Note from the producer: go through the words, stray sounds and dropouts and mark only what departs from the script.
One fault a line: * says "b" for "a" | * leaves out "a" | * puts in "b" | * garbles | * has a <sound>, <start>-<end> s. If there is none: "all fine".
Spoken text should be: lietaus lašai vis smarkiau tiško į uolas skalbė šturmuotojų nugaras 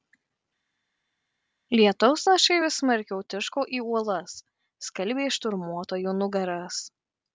all fine